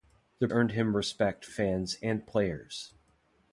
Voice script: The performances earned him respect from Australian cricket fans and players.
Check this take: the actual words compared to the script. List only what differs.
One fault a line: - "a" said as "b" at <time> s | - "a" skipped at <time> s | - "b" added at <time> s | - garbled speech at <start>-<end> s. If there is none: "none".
- "performances" skipped at 0.5 s
- "from Australian cricket" skipped at 1.5 s